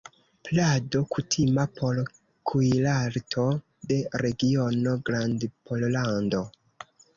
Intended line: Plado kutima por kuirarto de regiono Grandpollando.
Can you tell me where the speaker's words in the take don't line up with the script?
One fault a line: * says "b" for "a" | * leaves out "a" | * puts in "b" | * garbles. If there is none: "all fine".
all fine